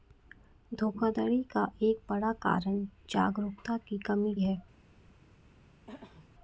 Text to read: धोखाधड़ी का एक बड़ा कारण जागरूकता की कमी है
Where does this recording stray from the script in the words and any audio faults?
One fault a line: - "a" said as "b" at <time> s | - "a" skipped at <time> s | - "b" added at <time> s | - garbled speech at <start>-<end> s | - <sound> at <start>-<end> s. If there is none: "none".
- throat clearing at 5.9-6.3 s